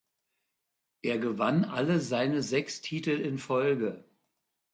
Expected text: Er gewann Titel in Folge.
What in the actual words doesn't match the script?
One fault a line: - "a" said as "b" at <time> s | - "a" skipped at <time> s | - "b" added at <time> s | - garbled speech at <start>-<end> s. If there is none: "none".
- "alle seine sechs" added at 1.6 s